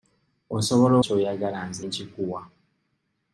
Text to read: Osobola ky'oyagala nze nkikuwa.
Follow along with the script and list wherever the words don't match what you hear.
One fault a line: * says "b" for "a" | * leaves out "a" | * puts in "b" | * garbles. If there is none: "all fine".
all fine